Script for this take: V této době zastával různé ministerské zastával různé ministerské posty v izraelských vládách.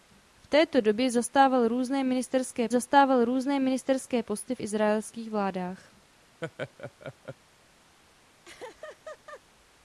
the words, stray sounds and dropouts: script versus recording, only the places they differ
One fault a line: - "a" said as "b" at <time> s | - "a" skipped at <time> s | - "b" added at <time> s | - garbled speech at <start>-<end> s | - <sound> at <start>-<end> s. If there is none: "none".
- laugh at 6.4-7.4 s
- laugh at 8.4-9.4 s